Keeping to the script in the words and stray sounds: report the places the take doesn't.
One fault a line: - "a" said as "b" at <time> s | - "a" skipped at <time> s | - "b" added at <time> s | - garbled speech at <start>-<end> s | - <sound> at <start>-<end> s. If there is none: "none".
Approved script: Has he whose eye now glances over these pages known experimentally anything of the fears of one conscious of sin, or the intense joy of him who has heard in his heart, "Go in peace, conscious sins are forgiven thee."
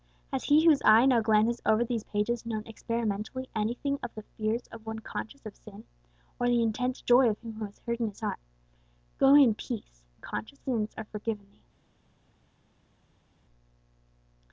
none